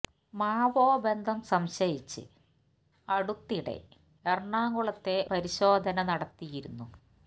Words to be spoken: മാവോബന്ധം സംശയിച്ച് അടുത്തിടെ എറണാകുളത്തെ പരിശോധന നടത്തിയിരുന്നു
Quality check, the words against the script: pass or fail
pass